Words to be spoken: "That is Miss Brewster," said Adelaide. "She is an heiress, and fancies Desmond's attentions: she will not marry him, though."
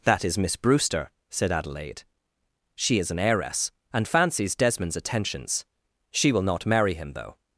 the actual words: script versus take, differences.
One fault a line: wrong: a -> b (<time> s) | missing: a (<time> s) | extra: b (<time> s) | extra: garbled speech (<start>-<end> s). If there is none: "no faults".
no faults